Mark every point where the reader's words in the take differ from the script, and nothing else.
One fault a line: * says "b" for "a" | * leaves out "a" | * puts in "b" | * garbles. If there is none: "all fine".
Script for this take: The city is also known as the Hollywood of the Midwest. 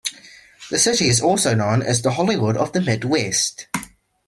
all fine